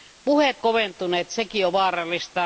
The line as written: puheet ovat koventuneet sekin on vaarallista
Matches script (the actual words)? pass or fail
fail